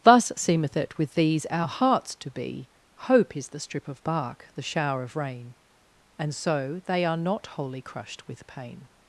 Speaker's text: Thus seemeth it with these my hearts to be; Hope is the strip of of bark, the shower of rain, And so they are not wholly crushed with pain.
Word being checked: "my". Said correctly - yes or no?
no